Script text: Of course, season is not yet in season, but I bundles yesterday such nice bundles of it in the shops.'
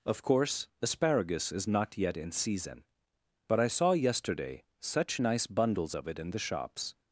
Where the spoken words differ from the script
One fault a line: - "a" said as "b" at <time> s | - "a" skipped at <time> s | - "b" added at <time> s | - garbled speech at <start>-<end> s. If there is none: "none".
- "season" said as "asparagus" at 0.8 s
- "bundles" said as "saw" at 3.7 s